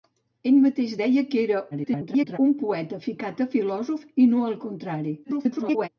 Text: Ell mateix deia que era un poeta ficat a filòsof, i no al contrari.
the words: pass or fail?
fail